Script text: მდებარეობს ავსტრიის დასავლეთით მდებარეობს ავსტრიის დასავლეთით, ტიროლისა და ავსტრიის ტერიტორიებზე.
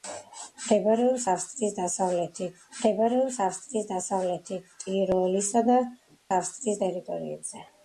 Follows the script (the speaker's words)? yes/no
yes